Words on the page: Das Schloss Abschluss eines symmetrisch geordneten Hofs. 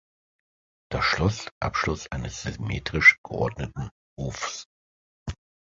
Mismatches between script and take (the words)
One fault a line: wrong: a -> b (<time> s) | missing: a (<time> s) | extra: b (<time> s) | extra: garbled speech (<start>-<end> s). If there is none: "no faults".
no faults